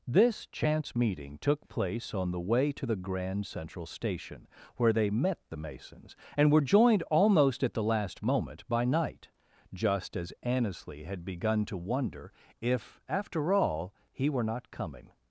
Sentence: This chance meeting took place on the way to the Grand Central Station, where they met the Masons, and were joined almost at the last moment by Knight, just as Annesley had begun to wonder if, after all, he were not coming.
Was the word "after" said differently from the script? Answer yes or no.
no